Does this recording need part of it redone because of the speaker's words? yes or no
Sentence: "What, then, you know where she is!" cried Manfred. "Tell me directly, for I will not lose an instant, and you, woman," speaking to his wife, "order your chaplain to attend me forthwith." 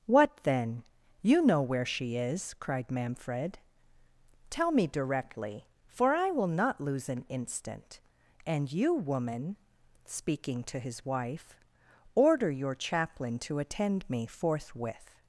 no